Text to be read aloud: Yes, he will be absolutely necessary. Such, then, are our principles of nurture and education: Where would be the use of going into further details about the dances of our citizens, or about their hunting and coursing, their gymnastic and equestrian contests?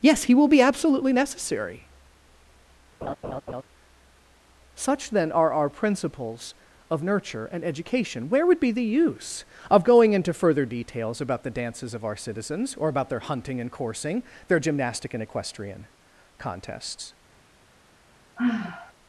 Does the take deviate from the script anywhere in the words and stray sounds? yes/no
yes